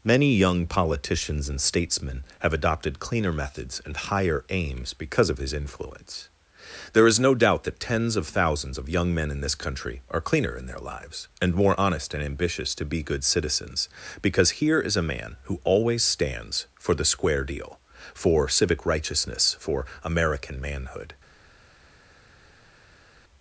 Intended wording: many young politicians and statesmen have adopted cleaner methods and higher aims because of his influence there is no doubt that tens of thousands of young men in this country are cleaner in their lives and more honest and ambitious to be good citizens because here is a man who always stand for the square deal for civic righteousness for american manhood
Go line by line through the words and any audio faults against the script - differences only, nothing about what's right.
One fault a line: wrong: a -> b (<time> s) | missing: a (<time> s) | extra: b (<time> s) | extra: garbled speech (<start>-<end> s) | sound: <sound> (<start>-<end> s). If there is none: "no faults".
wrong: stand -> stands (16.0 s)